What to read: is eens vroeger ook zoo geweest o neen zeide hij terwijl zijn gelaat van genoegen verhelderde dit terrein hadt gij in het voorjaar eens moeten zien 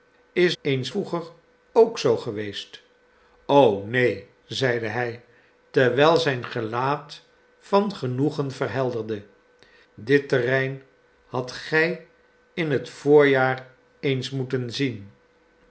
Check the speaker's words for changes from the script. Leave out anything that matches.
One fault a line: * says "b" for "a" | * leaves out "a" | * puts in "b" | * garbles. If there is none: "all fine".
all fine